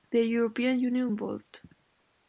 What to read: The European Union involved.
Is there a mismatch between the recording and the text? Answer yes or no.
no